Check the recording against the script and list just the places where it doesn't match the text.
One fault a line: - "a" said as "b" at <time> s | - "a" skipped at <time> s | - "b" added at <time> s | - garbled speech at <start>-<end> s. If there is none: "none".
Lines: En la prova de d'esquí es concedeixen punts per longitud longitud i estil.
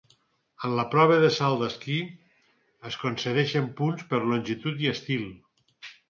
- "salt" added at 1.3 s
- "longitud" skipped at 4.8 s